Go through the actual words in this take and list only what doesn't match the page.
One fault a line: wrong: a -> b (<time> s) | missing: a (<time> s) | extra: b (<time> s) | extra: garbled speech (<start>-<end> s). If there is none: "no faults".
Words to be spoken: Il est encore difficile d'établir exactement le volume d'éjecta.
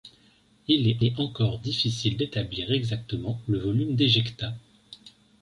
extra: est (1.0 s)